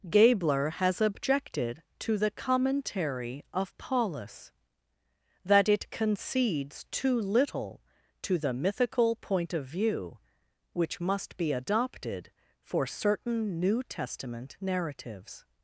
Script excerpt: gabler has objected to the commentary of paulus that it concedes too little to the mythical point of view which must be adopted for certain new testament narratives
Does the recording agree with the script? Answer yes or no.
yes